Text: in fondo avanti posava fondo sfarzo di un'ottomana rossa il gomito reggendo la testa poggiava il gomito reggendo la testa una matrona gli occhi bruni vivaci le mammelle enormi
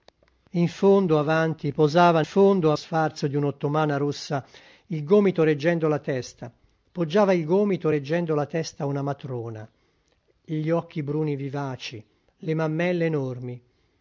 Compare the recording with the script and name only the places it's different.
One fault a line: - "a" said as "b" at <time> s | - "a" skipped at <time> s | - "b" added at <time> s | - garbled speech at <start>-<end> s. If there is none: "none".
none